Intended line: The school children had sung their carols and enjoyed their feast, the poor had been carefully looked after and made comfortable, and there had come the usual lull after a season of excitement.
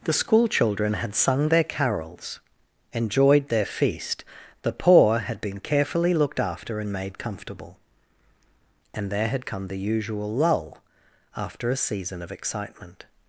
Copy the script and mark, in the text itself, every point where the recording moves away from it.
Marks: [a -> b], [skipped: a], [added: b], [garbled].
The school children had sung their carols [skipped: and] enjoyed their feast, the poor had been carefully looked after and made comfortable, and there had come the usual lull after a season of excitement.